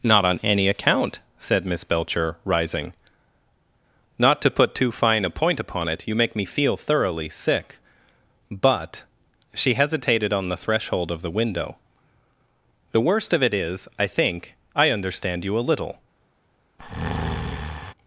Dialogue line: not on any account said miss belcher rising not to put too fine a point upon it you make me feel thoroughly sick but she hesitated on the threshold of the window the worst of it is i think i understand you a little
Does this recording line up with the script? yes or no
yes